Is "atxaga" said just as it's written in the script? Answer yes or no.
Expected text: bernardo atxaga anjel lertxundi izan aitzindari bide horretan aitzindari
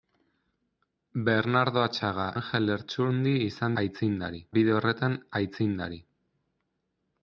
yes